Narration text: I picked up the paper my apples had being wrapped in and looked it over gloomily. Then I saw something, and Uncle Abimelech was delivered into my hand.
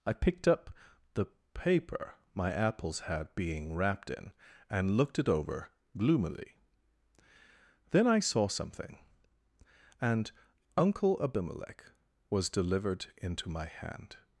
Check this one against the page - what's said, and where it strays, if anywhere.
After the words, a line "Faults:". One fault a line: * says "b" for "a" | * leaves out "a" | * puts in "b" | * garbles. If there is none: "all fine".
I picked up the paper my apples had being wrapped in and looked it over gloomily. Then I saw something, and Uncle Abimelech was delivered into my hand.
Faults:
all fine